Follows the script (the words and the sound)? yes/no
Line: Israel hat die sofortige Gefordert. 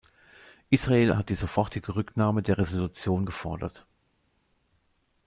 no